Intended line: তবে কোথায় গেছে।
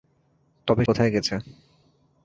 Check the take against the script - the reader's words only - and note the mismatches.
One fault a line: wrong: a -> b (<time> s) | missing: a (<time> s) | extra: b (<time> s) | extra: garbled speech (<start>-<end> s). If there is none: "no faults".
no faults